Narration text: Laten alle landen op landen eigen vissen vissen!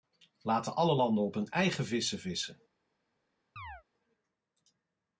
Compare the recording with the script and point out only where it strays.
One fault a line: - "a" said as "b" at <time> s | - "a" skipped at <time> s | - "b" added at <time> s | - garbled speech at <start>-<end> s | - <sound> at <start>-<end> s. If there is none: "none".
- "landen" said as "hun" at 1.3 s
- chirp at 3.6-3.8 s